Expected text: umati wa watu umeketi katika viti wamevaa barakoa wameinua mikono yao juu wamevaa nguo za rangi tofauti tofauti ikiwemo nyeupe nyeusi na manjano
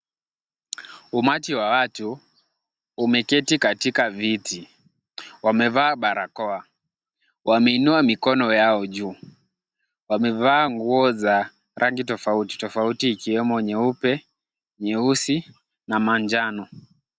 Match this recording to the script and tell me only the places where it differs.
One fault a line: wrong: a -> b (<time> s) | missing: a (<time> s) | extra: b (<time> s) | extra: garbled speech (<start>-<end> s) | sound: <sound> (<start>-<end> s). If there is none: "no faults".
no faults